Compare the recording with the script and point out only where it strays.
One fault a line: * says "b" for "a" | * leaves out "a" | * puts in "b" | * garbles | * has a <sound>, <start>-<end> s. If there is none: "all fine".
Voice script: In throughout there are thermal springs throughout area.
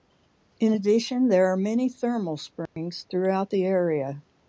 * says "addition" for "throughout"
* puts in "many"
* has a dropout, 2.7-2.8 s
* puts in "the"